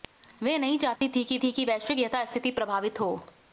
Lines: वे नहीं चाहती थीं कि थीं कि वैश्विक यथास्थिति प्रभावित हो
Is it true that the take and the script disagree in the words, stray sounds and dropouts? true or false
true